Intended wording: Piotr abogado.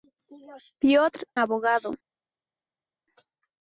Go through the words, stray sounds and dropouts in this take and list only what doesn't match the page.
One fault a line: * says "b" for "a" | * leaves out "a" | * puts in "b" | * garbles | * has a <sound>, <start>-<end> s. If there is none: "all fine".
all fine